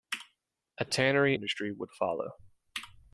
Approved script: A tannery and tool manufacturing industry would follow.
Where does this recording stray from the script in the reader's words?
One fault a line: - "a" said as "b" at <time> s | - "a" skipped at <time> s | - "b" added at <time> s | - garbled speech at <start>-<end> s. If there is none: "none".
- "and tool manufacturing" skipped at 1.4 s